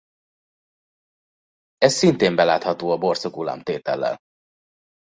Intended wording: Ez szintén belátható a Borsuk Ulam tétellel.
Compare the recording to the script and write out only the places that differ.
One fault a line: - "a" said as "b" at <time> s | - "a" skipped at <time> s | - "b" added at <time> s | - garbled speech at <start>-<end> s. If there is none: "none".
none